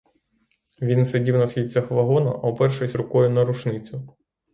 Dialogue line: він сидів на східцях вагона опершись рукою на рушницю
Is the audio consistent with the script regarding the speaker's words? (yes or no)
yes